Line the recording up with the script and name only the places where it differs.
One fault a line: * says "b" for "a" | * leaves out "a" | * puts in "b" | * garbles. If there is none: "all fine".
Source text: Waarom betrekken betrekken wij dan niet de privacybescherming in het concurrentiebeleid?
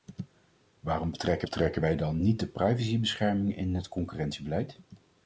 all fine